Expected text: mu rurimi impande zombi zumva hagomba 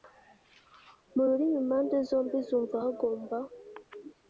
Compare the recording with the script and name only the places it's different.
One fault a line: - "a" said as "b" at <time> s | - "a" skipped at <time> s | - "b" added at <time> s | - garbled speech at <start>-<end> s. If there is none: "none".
none